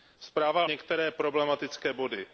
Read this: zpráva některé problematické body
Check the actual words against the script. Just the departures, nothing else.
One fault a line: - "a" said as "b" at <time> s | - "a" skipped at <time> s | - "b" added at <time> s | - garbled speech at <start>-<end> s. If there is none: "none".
none